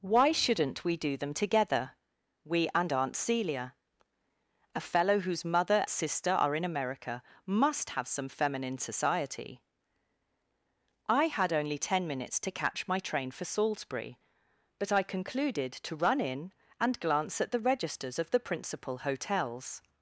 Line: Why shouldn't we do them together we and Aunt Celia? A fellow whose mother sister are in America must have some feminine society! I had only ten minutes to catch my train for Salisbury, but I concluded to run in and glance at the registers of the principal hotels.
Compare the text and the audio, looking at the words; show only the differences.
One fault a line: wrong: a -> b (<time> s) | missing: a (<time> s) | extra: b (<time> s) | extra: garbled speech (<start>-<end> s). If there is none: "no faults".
no faults